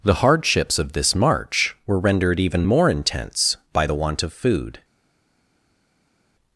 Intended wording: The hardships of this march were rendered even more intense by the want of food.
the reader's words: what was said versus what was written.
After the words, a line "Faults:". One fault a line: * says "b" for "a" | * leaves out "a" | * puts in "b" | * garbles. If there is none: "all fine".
The hardships of this march were rendered even more intense by the want of food.
Faults:
all fine